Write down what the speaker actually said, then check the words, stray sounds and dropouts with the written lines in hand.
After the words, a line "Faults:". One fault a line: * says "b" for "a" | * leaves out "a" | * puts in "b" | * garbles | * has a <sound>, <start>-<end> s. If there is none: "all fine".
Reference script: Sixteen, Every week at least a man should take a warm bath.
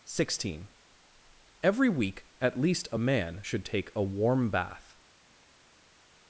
Sixteen, Every week at least a man should take a warm bath.
Faults:
all fine